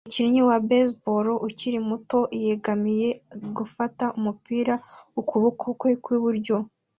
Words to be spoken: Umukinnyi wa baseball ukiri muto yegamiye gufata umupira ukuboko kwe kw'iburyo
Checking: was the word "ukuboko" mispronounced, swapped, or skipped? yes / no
no